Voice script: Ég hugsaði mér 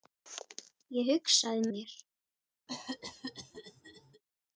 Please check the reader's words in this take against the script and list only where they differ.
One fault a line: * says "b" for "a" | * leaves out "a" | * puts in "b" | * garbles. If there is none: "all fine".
all fine